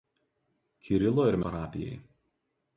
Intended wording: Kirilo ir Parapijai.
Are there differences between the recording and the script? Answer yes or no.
no